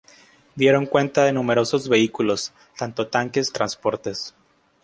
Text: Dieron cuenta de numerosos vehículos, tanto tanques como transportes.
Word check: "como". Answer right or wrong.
wrong